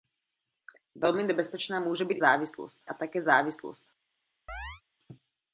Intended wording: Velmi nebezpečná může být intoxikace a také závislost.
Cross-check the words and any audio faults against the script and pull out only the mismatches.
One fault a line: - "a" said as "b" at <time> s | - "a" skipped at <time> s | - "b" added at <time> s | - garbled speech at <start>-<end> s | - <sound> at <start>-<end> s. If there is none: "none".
- "intoxikace" said as "závislost" at 2.2 s
- chirp at 4.5-4.8 s